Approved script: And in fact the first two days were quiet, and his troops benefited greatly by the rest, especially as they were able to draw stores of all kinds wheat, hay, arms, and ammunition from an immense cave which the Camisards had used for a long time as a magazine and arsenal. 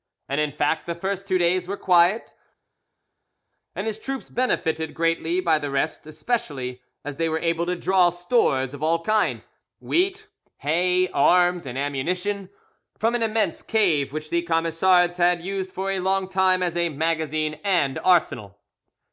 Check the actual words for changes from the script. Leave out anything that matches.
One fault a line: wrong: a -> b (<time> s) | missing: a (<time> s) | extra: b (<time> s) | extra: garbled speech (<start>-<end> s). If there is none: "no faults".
no faults